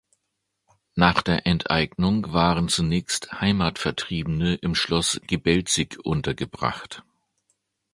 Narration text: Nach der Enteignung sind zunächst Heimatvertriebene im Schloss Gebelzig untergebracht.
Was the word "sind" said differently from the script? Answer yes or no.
yes